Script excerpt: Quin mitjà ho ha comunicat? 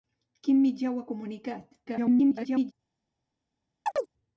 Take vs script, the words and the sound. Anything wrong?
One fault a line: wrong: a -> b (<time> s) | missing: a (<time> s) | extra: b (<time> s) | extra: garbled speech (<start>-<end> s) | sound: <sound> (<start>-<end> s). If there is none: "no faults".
extra: garbled speech (1.9-2.7 s)
sound: chirp (3.9-4.1 s)